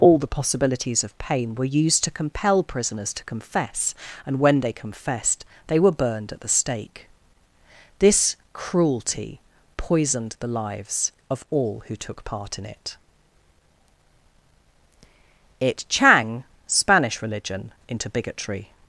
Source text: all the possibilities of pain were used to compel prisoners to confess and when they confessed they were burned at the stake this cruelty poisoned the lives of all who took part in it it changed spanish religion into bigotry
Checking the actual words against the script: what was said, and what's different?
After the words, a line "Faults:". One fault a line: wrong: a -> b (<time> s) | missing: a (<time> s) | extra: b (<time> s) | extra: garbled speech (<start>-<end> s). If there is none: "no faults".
all the possibilities of pain were used to compel prisoners to confess and when they confessed they were burned at the stake this cruelty poisoned the lives of all who took part in it it chang spanish religion into bigotry
Faults:
wrong: changed -> chang (15.9 s)